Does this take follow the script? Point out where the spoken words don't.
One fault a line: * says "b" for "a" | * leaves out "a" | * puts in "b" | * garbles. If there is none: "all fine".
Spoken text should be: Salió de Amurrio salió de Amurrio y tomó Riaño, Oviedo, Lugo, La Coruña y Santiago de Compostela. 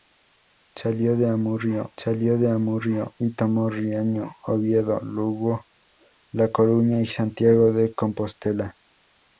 all fine